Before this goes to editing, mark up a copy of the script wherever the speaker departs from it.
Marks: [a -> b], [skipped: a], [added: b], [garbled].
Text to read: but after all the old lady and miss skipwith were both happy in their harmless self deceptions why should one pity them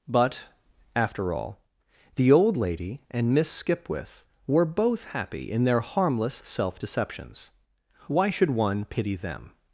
but after all the old lady and miss skipwith were both happy in their harmless self deceptions why should one pity them